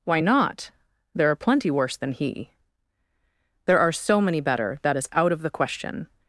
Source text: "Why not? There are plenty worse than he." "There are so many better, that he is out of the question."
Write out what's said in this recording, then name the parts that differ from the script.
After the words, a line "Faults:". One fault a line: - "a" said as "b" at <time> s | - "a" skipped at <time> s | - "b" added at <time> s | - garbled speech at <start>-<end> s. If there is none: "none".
"Why not? There are plenty worse than he." "There are so many better, that is out of the question."
Faults:
- "he" skipped at 5.0 s